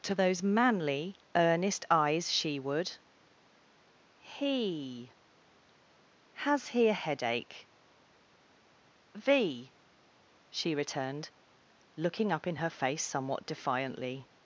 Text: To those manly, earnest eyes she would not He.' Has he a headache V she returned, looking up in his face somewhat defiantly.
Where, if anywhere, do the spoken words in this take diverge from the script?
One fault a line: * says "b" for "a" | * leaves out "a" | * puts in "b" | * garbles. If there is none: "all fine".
* leaves out "not"
* says "her" for "his"